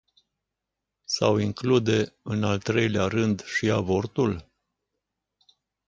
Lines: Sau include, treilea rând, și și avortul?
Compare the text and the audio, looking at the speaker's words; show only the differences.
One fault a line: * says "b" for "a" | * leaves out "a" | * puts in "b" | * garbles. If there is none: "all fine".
* puts in "în al"
* leaves out "și"